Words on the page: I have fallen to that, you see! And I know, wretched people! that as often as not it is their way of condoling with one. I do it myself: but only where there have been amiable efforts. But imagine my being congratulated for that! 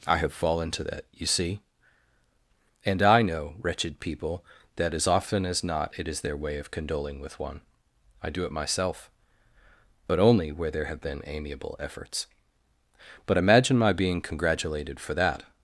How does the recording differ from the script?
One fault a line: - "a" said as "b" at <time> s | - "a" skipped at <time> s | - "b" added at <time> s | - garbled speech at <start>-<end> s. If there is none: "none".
none